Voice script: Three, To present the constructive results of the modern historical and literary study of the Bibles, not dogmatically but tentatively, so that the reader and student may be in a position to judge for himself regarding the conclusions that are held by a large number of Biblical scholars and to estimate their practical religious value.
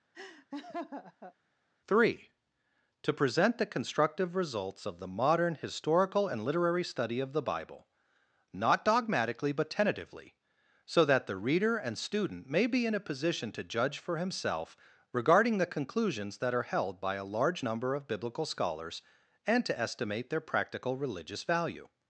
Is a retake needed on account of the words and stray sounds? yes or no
yes